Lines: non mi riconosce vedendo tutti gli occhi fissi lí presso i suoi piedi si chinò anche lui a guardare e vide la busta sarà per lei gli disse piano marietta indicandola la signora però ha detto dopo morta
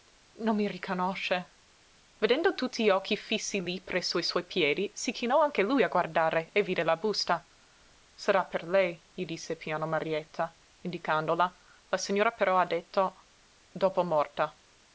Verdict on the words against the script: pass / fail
pass